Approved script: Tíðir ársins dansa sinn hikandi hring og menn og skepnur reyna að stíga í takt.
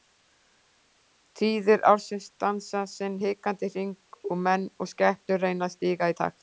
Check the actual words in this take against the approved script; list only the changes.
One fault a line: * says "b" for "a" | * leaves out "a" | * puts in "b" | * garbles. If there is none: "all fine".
all fine